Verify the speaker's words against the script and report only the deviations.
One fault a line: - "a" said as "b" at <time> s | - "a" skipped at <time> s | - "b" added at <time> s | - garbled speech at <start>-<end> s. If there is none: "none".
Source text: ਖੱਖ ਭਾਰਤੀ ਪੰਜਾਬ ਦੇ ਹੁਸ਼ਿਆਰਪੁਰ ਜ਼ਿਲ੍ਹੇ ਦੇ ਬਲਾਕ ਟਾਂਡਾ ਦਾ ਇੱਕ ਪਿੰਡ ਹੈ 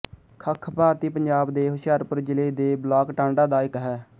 - "ਪਿੰਡ" skipped at 3.8 s